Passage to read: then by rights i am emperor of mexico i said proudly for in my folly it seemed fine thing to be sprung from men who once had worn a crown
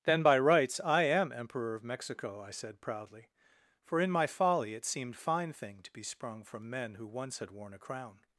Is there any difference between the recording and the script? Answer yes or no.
no